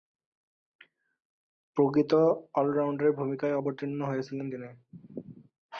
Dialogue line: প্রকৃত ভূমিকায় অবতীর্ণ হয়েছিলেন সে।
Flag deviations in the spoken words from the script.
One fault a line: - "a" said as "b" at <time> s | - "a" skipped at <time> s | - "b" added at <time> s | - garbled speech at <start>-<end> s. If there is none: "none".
- "অল রাউন্ডারের" added at 2.5 s
- "সে" said as "তিনি" at 4.5 s